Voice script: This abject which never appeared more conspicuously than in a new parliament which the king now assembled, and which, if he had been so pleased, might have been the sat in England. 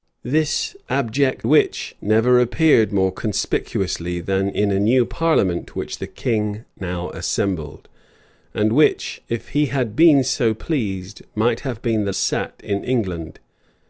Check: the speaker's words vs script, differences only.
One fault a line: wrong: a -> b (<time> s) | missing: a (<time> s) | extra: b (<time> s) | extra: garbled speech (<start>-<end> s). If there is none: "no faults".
no faults